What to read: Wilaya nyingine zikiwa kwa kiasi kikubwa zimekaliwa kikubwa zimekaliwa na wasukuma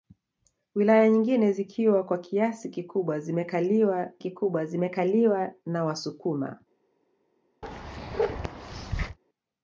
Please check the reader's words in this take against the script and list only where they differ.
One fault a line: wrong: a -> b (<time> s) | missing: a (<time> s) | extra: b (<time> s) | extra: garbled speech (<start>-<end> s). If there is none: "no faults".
no faults